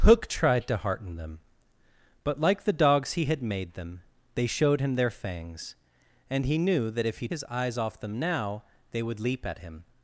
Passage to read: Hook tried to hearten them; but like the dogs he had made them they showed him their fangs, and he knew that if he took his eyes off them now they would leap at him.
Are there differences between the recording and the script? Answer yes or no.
yes